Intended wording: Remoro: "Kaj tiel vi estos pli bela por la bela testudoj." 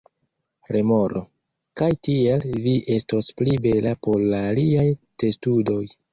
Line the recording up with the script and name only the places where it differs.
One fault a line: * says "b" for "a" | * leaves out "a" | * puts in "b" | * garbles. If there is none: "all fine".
* says "aliaj" for "bela"